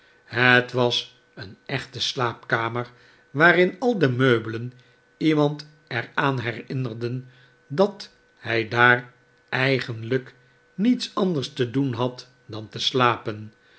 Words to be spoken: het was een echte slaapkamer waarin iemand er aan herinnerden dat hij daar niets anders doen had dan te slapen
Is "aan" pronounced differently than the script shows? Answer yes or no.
no